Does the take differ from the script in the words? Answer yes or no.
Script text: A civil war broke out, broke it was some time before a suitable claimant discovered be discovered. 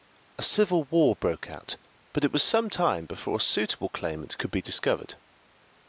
yes